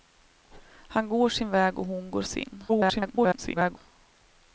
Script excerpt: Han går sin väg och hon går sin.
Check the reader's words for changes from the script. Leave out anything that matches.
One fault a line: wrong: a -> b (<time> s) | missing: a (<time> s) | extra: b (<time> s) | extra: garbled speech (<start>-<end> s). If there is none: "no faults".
extra: garbled speech (2.7-3.8 s)